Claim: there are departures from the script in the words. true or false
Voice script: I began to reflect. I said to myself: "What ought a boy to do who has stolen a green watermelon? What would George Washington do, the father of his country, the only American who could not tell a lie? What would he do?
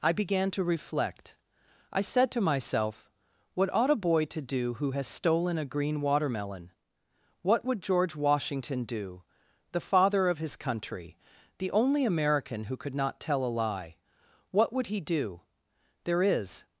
true